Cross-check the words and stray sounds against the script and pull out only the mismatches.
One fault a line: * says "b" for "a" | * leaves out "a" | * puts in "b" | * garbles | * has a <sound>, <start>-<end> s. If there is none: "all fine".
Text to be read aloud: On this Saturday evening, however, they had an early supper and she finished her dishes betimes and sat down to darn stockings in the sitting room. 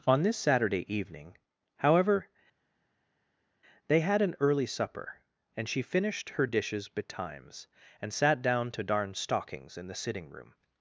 all fine